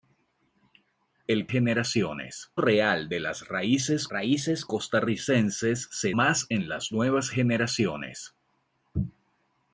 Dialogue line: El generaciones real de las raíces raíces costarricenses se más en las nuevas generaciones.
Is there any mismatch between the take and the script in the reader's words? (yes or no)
no